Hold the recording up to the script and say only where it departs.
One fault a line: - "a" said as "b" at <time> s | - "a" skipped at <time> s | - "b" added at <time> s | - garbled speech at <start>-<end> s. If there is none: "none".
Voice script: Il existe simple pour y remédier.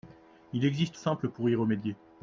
none